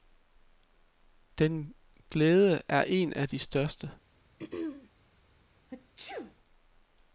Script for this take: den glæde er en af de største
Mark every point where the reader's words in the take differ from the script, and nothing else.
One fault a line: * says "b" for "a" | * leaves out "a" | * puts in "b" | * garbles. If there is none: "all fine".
all fine